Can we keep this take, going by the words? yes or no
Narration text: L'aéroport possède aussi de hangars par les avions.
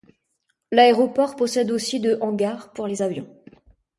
no